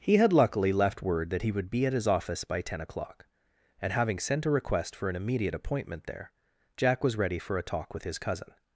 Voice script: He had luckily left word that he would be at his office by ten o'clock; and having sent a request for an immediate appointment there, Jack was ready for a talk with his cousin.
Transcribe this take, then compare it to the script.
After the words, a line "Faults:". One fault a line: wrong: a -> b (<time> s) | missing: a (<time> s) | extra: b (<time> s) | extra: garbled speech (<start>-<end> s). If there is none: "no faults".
He had luckily left word that he would be at his office by ten o'clock; and having sent a request for an immediate appointment there, Jack was ready for a talk with his cousin.
Faults:
no faults